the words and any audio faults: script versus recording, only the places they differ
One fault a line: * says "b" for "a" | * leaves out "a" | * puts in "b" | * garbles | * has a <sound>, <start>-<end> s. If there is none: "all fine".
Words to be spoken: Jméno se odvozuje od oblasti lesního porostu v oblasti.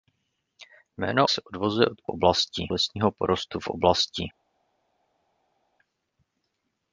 all fine